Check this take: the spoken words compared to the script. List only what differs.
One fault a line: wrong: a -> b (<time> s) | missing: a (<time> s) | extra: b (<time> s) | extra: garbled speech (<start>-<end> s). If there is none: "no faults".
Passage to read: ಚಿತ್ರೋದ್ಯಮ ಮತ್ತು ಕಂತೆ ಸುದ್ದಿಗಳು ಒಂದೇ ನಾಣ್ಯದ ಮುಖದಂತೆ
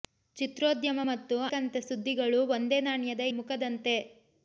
no faults